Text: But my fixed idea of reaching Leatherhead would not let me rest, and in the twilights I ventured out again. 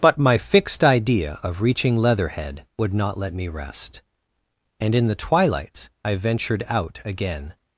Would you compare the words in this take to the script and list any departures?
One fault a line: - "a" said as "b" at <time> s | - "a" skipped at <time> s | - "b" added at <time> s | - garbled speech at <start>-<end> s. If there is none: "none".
none